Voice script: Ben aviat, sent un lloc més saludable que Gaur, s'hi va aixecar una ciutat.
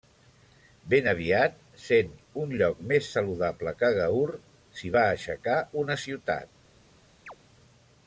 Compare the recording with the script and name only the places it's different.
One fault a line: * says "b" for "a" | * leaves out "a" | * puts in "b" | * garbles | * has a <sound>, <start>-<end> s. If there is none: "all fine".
* has a chirp, 7.3-7.4 s